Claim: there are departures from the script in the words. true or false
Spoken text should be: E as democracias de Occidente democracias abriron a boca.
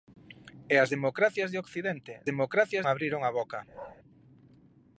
false